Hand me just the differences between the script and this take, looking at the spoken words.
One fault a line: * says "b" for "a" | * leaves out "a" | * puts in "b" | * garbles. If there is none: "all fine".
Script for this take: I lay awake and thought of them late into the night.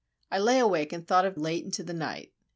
* leaves out "them"